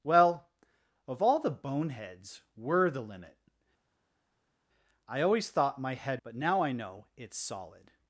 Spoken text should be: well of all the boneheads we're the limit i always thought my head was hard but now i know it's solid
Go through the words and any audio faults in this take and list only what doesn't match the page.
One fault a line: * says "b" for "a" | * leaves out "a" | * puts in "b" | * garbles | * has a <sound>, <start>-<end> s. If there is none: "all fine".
* leaves out "was hard"